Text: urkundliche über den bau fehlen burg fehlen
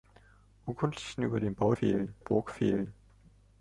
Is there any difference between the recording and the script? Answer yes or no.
no